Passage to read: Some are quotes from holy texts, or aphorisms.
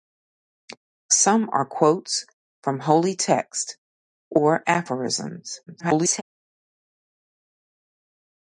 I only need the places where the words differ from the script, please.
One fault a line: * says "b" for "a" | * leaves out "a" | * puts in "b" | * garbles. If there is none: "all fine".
* garbles